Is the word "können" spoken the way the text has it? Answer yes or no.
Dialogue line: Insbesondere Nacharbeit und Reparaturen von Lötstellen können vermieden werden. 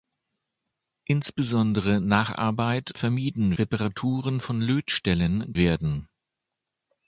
no